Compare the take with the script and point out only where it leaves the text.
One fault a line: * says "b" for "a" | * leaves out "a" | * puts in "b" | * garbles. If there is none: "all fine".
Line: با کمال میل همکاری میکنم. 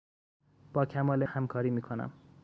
* leaves out "میل"